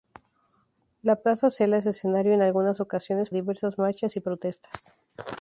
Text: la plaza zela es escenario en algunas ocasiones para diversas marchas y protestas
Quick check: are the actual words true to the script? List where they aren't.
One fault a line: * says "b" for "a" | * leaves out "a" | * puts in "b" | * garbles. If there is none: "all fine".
* leaves out "para"